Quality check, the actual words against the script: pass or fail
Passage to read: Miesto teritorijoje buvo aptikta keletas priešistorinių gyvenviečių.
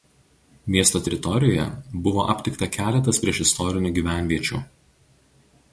pass